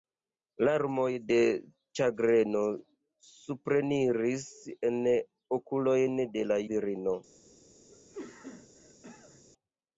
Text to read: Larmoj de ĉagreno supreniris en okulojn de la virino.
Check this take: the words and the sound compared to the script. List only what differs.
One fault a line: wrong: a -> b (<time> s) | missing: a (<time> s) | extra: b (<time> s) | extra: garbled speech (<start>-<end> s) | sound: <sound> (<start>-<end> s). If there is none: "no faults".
sound: cough (7.9-9.4 s)